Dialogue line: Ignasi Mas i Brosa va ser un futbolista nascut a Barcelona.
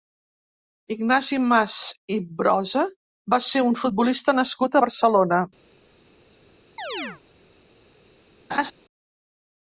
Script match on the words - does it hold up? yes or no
yes